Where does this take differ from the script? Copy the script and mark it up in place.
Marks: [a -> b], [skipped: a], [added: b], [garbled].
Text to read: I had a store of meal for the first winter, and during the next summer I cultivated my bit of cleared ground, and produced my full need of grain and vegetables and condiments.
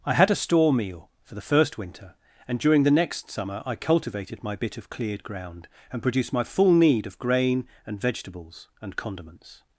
I had a store [skipped: of] meal for the first winter, and during the next summer I cultivated my bit of cleared ground, and produced my full need of grain and vegetables and condiments.